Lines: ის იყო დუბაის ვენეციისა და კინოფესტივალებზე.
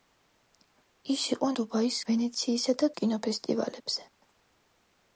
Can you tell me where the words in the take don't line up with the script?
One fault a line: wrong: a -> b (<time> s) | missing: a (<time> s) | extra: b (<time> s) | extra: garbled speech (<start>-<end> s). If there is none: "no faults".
no faults